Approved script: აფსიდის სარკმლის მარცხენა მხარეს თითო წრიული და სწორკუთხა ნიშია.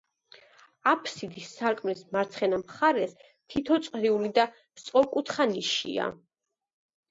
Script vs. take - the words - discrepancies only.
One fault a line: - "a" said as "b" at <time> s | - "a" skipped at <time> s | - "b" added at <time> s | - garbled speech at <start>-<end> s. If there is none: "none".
none